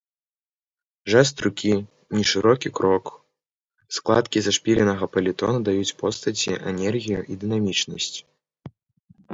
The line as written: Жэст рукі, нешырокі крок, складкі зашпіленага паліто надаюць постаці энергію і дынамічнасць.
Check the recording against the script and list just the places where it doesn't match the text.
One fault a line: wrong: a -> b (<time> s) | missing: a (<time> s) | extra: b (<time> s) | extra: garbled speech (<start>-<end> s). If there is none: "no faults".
no faults